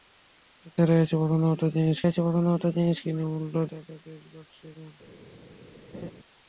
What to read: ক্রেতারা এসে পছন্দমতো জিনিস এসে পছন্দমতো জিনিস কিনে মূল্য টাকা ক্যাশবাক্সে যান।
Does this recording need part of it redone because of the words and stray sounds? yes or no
yes